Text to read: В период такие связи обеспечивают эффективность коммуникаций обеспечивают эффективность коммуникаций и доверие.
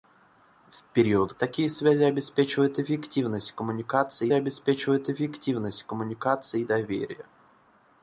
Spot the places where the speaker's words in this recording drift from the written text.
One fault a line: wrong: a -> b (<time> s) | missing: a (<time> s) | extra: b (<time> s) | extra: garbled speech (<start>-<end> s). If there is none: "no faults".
no faults